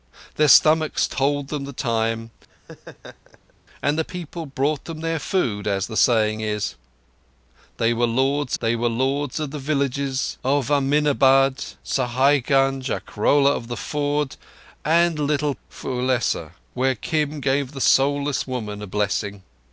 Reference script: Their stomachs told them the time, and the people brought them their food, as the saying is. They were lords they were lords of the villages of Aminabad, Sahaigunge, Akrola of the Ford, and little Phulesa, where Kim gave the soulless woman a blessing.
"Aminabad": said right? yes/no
yes